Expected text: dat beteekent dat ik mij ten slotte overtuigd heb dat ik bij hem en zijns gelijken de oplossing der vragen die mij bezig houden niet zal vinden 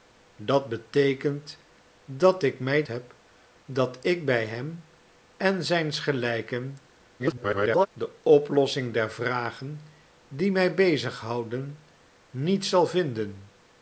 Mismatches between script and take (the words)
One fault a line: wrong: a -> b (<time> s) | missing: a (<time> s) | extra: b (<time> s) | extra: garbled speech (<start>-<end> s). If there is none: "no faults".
missing: ten slotte overtuigd (2.8 s)
extra: garbled speech (7.2-7.9 s)